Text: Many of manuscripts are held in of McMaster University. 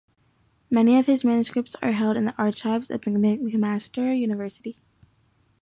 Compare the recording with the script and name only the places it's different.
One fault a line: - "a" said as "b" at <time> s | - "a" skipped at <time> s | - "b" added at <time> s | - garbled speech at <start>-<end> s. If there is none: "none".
- "his" added at 1.1 s
- "the archives" added at 2.2 s